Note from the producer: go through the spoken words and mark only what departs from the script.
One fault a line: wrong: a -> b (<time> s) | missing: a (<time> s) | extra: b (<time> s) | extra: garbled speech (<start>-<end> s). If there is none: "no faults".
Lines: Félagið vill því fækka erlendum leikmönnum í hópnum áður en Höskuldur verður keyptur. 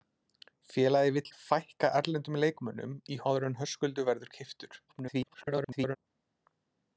missing: því (1.3 s)
missing: hópnum (3.2 s)
extra: garbled speech (4.9-6.0 s)